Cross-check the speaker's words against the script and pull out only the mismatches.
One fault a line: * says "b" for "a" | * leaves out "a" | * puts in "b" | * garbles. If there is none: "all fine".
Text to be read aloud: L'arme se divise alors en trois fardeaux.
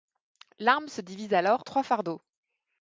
* leaves out "en"